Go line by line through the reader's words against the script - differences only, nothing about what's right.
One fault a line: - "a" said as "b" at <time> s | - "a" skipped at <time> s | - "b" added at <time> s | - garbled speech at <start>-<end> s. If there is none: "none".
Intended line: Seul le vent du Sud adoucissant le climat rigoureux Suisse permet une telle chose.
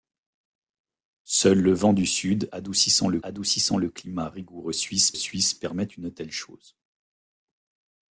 - "adoucissant le" added at 3.2 s
- "Suisse" added at 5.1 s